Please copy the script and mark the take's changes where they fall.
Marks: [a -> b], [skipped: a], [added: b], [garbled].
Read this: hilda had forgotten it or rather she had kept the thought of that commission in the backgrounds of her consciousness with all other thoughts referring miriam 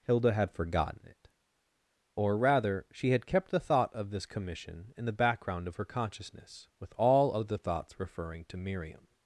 hilda had forgotten it or rather she had kept the thought of [that -> this] commission in the [backgrounds -> background] of her consciousness with all other thoughts referring [added: to] miriam